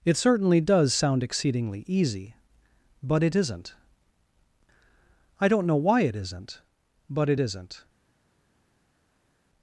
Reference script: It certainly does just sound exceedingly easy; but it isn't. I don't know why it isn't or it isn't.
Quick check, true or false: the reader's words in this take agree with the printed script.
false